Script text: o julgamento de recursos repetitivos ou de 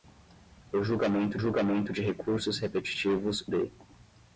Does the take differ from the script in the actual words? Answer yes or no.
yes